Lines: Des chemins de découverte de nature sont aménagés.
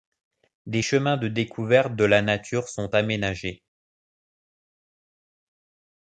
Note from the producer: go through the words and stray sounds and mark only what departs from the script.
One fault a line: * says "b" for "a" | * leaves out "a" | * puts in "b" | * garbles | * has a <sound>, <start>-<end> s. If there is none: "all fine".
* puts in "la"